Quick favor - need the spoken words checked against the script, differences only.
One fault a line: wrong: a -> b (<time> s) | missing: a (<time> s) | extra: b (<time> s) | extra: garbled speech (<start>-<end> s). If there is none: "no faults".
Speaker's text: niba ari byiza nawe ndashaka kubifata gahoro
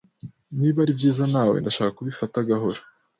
no faults